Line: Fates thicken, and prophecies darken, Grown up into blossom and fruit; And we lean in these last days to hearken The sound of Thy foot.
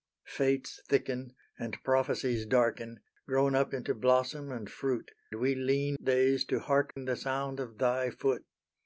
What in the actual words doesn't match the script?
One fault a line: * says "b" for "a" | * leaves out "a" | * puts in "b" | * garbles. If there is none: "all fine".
* leaves out "And"
* leaves out "in these last"